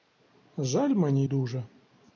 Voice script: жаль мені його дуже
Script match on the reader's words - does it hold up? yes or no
no